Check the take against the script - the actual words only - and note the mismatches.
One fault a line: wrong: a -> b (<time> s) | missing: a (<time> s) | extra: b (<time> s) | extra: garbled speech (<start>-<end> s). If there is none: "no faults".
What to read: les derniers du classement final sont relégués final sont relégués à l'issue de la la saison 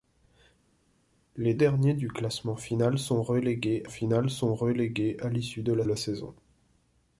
no faults